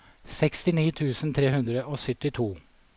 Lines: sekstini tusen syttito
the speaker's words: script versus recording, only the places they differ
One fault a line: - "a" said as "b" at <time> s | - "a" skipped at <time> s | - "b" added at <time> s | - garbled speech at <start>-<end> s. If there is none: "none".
- "tre hundre og" added at 1.4 s